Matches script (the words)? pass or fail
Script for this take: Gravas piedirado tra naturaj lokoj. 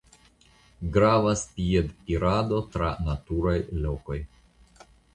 pass